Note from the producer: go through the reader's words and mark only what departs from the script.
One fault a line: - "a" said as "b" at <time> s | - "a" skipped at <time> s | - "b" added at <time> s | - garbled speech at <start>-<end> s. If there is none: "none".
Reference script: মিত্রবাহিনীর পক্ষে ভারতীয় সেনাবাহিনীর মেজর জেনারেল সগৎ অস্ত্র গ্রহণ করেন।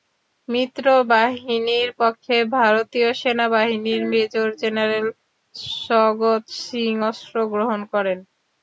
- "সিং" added at 6.6 s